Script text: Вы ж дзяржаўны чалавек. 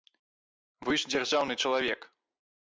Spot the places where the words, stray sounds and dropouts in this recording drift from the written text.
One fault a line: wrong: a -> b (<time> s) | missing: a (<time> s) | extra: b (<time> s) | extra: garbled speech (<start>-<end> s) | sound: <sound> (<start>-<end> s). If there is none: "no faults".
no faults